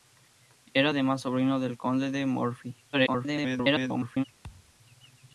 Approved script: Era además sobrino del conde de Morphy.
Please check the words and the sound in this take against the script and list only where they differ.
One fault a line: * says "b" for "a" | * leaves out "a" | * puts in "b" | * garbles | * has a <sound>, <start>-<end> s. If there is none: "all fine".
* garbles
* has a thud, 4.4-4.7 s